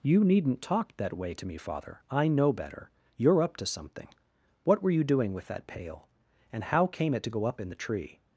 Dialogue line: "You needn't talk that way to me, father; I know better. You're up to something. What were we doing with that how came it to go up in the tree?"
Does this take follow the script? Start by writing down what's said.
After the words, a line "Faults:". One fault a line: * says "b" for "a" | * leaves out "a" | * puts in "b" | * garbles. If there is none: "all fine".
"You needn't talk that way to me, father; I know better. You're up to something. What were you doing with that pail, and how came it to go up in the tree?"
Faults:
* says "you" for "we"
* puts in "pail and"